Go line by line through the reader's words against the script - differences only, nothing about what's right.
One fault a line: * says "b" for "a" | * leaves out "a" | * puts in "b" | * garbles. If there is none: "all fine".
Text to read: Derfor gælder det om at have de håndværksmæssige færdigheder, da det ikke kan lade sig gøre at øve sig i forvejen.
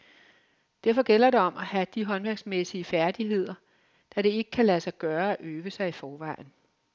all fine